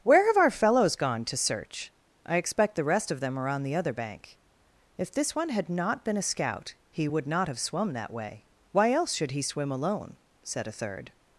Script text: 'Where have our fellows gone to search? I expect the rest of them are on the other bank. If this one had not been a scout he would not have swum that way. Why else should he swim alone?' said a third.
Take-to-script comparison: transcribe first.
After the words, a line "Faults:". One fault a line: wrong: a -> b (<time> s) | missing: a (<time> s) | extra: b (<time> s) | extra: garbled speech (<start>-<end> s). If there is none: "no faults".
'Where have our fellows gone to search? I expect the rest of them are on the other bank. If this one had not been a scout he would not have swum that way. Why else should he swim alone?' said a third.
Faults:
no faults